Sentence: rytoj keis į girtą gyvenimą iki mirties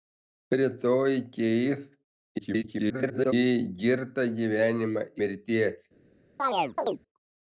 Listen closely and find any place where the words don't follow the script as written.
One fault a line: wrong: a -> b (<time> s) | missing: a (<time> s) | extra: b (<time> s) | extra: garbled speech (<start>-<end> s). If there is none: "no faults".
extra: garbled speech (2.4-3.3 s)
missing: iki (5.1 s)